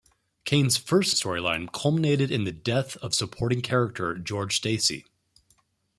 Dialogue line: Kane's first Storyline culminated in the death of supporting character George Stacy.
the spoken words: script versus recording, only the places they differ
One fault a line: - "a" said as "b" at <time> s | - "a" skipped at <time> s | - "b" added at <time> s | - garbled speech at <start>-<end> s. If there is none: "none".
none